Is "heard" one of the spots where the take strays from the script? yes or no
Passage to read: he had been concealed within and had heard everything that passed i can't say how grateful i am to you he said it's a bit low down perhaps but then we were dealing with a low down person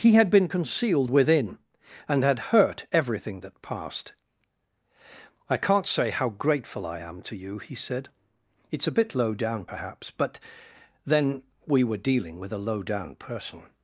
yes